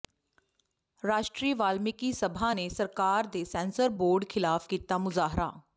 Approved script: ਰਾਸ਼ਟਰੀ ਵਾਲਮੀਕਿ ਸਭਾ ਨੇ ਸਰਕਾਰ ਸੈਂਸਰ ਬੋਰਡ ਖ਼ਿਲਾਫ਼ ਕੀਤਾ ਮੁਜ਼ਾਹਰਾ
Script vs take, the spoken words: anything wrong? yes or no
yes